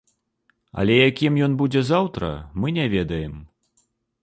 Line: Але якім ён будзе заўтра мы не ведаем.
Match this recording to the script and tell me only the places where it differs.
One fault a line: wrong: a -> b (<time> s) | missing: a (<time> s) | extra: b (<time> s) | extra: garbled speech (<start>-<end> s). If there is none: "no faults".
no faults